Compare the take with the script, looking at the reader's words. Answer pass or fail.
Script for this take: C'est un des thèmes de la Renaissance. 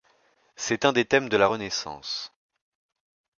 pass